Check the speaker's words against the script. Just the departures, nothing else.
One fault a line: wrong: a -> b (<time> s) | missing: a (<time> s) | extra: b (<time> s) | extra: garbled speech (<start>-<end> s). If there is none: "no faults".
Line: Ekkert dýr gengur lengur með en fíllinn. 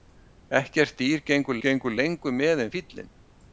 extra: gengur (1.6 s)